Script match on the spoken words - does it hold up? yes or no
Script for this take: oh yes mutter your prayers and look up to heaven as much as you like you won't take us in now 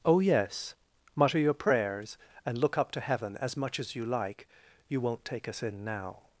yes